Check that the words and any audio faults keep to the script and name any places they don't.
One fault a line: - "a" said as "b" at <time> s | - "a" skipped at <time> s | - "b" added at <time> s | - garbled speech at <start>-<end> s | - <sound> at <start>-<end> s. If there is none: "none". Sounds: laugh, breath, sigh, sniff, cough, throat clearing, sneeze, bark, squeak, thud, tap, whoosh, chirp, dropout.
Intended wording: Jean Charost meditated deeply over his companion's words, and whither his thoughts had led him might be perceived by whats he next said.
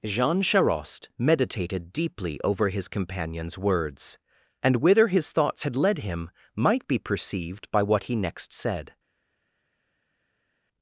- "whats" said as "what" at 7.8 s